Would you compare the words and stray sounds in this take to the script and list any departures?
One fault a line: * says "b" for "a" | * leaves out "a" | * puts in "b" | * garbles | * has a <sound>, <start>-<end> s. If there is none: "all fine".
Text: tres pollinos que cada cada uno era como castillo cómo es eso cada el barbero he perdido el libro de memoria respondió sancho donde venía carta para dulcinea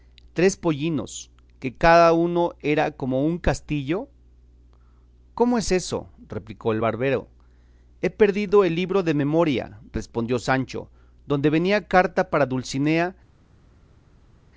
* leaves out "cada"
* puts in "un"
* says "replicó" for "cada"